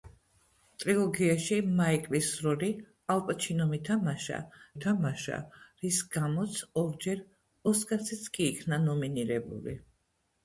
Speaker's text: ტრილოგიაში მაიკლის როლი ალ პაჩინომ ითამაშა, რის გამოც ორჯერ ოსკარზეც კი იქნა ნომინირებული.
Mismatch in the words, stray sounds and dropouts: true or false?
true